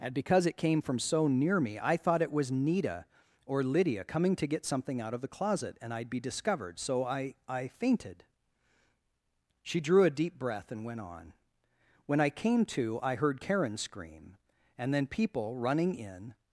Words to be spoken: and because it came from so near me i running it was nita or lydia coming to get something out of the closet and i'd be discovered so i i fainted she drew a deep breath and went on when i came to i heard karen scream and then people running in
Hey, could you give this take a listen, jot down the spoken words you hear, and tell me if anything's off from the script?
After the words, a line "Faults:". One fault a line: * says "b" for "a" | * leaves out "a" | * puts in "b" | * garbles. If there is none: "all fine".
and because it came from so near me i thought it was nita or lydia coming to get something out of the closet and i'd be discovered so i i fainted she drew a deep breath and went on when i came to i heard karen scream and then people running in
Faults:
* says "thought" for "running"